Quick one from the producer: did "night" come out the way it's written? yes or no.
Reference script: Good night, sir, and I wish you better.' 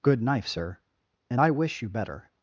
no